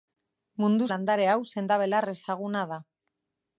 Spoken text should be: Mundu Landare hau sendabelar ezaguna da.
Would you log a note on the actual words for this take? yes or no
no